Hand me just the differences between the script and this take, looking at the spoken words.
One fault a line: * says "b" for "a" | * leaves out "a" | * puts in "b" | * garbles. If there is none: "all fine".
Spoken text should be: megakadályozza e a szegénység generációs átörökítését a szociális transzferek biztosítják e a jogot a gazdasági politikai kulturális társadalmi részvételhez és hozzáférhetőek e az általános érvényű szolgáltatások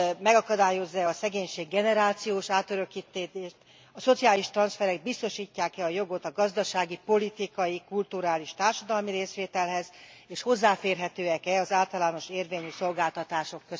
all fine